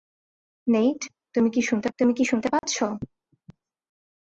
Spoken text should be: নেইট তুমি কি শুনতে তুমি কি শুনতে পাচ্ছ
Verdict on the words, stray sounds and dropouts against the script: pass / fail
fail